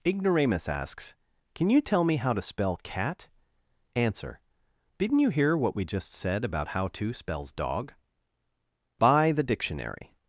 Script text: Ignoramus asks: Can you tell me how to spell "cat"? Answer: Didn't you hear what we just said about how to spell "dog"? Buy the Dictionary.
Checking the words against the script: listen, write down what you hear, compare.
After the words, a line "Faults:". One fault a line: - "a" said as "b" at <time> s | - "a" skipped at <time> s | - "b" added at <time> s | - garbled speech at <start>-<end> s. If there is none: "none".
Ignoramus asks: Can you tell me how to spell "cat"? Answer: Didn't you hear what we just said about how to spells "dog"? Buy the Dictionary.
Faults:
- "spell" said as "spells" at 7.1 s